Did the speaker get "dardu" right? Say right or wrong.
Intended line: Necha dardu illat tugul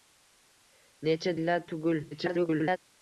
wrong